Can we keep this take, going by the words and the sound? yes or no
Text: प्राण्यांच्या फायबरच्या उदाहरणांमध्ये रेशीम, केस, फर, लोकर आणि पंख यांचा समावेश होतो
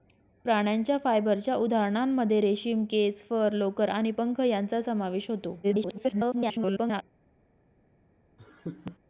no